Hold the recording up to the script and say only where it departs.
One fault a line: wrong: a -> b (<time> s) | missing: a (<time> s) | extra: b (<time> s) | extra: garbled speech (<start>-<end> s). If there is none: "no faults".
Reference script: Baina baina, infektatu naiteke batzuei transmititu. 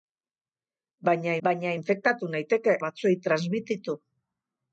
no faults